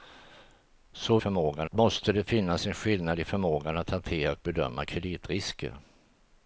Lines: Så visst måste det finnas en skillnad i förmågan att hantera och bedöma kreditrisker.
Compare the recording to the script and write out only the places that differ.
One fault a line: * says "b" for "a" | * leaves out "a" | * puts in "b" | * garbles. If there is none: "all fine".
* says "förmågan" for "visst"